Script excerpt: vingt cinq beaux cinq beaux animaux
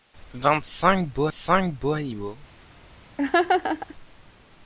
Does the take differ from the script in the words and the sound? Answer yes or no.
yes